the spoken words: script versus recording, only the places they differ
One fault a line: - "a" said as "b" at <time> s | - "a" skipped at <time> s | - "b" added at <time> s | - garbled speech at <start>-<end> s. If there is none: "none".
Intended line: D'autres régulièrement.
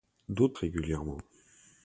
none